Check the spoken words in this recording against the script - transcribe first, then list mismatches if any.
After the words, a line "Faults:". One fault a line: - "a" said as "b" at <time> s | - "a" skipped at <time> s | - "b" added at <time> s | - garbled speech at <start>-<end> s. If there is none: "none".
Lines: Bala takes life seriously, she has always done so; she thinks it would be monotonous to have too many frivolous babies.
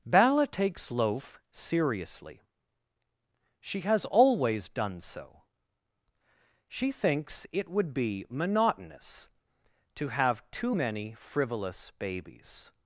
Bala takes loaf seriously, she has always done so; she thinks it would be monotonous to have too many frivolous babies.
Faults:
- "life" said as "loaf" at 0.9 s